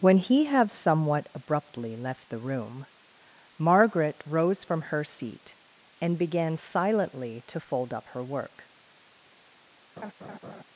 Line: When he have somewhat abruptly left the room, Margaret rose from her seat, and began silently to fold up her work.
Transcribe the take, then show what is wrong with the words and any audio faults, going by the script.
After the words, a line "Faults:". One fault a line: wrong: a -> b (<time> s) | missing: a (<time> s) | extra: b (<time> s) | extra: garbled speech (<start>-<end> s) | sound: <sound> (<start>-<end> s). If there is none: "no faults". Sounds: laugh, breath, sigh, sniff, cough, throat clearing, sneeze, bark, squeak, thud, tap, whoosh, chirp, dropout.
When he have somewhat abruptly left the room, Margaret rose from her seat, and began silently to fold up her work.
Faults:
sound: laugh (10.0-10.6 s)